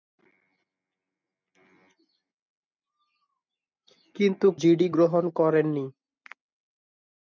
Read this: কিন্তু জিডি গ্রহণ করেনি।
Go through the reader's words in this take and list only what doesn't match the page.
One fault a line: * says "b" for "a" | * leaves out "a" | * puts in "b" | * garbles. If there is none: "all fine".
all fine